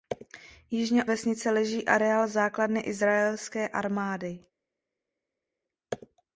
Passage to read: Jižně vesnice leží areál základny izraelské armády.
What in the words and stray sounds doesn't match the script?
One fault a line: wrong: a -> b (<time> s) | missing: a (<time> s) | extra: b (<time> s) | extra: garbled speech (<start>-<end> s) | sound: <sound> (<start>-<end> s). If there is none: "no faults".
no faults